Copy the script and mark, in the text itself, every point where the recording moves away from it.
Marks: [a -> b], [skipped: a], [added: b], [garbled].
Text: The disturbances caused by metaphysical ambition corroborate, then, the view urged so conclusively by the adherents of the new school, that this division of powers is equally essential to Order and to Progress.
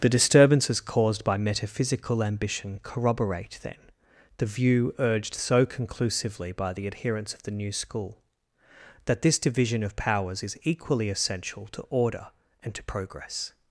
The disturbances caused by metaphysical ambition corroborate, then, the view urged so conclusively by the adherents of the new school, that this division of powers is equally essential to Order and to Progress.